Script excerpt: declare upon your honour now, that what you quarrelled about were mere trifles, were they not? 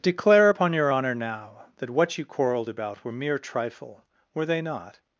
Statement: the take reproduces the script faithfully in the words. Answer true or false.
false